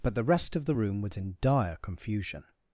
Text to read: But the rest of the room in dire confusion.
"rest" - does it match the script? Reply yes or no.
yes